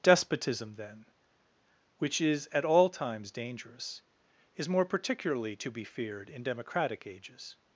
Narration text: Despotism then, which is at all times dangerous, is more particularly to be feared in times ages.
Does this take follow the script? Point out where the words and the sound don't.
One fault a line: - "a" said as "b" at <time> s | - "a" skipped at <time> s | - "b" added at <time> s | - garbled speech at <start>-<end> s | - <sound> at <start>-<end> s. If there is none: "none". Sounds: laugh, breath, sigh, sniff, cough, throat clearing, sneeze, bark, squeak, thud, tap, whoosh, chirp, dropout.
- "times" said as "democratic" at 6.4 s